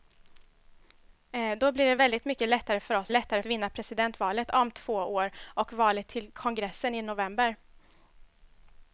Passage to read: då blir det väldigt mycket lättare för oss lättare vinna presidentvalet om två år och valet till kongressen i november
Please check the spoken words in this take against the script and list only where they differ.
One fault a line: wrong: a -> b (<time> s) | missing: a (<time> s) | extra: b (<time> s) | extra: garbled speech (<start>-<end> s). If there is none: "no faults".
no faults